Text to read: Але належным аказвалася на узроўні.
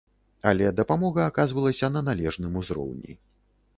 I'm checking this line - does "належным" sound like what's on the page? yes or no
no